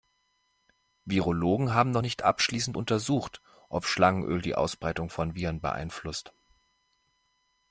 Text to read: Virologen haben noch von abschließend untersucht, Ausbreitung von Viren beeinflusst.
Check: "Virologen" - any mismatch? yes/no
no